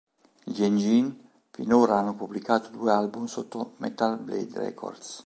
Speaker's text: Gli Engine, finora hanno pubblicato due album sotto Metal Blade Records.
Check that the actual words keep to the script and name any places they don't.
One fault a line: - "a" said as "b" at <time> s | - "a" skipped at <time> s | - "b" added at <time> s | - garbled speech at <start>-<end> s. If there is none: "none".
none